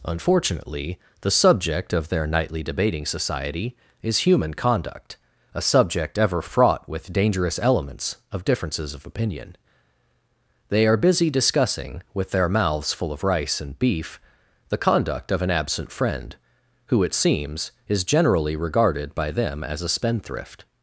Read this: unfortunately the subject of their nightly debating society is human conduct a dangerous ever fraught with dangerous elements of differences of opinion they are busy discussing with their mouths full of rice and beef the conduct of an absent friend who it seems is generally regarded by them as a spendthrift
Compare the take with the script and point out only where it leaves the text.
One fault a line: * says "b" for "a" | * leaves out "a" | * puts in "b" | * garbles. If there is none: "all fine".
* says "subject" for "dangerous"